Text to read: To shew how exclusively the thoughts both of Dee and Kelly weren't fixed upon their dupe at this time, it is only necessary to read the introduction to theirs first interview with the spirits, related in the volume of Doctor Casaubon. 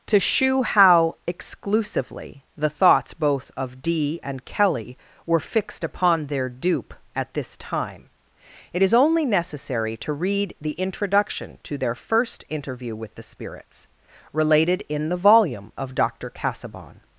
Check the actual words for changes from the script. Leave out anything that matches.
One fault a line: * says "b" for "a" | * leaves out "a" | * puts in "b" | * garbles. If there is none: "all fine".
* says "were" for "weren't"
* says "their" for "theirs"